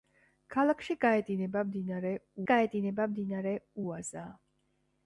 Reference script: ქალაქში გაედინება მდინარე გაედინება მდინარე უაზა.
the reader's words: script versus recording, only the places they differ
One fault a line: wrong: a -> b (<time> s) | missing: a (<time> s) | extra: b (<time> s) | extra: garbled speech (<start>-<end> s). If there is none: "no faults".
no faults